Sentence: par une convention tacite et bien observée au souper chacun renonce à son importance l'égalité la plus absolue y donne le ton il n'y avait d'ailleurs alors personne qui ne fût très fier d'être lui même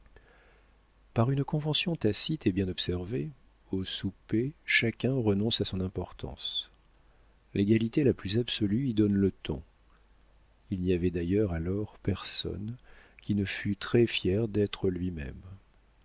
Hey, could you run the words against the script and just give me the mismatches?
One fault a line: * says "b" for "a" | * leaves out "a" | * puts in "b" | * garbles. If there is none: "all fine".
all fine